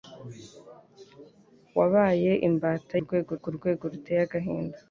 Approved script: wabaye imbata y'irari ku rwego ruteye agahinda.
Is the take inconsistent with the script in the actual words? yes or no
yes